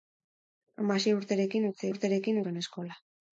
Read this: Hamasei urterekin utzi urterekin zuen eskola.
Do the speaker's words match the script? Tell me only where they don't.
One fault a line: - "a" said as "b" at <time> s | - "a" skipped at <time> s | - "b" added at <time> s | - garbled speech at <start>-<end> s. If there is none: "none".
none